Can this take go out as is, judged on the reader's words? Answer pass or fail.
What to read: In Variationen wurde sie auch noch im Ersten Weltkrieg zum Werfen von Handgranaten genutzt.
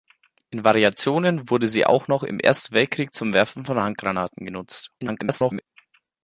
fail